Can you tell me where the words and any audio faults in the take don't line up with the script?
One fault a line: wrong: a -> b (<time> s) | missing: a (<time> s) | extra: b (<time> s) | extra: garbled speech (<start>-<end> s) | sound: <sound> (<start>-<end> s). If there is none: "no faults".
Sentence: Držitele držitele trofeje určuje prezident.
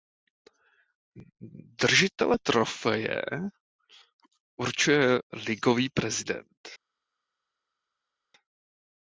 missing: držitele (2.4 s)
extra: ligový (5.3 s)